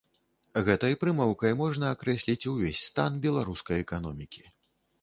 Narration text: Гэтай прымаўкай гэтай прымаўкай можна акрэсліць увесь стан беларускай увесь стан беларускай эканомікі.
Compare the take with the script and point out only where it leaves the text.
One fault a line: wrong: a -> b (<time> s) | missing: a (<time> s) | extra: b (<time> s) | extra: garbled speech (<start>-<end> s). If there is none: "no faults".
missing: гэтай прымаўкай (1.5 s)
missing: увесь стан беларускай (3.8 s)